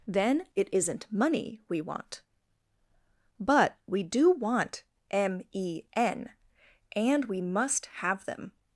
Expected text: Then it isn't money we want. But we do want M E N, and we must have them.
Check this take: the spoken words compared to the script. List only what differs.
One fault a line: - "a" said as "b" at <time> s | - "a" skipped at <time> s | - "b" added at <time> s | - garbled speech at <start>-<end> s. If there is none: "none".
none